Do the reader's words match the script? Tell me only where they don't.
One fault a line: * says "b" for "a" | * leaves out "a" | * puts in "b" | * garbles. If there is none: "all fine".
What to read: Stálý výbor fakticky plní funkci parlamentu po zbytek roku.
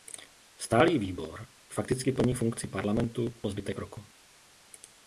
all fine